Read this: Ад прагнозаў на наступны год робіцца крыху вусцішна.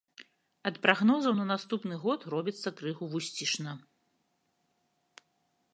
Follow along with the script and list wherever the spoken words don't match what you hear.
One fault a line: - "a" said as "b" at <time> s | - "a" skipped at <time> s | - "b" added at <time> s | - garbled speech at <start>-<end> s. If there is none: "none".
none